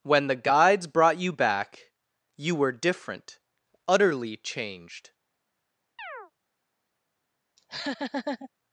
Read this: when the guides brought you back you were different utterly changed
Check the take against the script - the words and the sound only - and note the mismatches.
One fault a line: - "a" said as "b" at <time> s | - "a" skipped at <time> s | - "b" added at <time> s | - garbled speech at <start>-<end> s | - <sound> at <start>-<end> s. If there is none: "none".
- chirp at 6.0-6.3 s
- laugh at 7.6-8.5 s